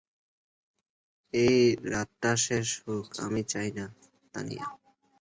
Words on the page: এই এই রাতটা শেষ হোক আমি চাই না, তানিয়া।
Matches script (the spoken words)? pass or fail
fail